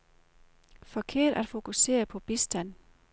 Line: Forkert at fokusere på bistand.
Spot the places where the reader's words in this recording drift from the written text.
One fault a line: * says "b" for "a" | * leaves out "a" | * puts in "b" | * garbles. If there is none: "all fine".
all fine